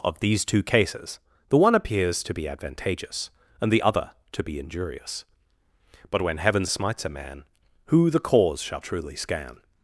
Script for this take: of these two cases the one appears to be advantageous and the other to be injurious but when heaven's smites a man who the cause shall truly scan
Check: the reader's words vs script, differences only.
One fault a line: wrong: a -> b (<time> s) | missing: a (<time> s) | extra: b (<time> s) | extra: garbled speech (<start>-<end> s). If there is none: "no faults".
no faults